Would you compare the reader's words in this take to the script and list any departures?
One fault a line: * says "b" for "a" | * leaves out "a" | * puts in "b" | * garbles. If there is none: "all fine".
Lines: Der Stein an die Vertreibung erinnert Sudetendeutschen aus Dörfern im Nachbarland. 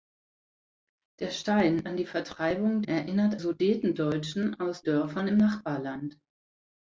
all fine